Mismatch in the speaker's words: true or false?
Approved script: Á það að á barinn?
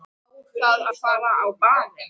true